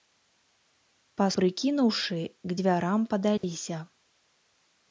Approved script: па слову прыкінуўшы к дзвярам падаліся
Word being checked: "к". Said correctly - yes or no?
yes